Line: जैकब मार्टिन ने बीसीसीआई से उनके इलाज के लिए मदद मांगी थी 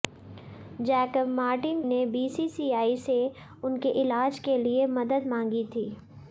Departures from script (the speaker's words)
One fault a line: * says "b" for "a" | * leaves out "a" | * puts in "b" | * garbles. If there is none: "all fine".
all fine